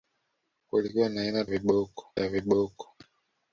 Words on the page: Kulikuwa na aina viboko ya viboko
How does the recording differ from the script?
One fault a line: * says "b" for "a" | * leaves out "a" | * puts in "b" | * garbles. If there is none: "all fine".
all fine